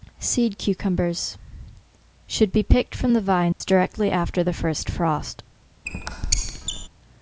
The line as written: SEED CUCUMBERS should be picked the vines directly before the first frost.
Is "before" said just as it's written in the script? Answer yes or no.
no